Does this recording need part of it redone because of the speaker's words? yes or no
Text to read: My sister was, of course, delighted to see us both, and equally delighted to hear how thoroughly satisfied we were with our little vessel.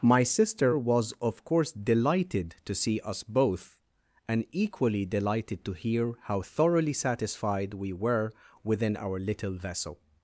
yes